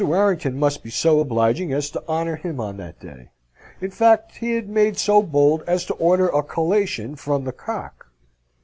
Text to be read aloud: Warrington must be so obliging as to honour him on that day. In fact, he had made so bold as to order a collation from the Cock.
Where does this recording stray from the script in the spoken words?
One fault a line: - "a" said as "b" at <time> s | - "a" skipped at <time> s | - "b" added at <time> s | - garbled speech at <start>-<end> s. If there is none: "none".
none